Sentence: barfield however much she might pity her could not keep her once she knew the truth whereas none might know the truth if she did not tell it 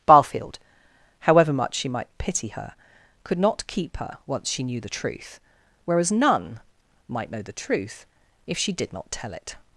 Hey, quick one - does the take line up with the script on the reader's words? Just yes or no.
yes